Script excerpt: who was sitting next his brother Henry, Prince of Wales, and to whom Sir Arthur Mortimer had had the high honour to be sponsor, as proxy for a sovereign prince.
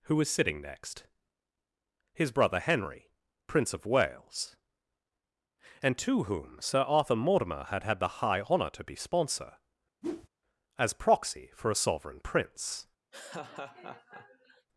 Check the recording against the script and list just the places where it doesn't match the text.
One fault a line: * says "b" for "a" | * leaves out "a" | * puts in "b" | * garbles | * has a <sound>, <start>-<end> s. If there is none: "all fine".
* has a whoosh, 10.0-10.3 s
* has a laugh, 13.1-14.7 s